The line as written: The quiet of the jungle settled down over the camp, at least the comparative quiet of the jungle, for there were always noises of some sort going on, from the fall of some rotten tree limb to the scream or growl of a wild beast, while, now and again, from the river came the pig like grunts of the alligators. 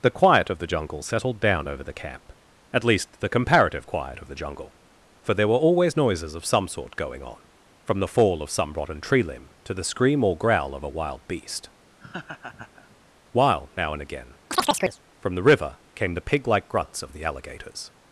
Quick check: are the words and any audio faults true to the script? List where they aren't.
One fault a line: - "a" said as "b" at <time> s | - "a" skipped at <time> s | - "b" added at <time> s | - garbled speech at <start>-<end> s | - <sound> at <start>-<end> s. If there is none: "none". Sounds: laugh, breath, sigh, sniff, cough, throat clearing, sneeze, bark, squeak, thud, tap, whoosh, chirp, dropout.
- laugh at 12.0-13.0 s
- chirp at 14.5-15.0 s